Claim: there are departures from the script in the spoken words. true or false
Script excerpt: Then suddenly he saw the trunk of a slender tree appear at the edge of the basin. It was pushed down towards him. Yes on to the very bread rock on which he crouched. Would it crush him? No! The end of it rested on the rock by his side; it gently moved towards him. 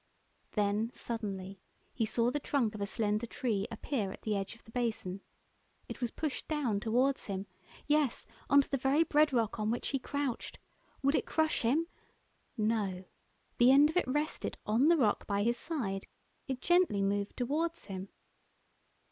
false